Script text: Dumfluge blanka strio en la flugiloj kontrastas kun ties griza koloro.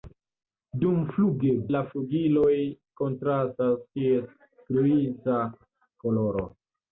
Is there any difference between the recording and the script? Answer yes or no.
yes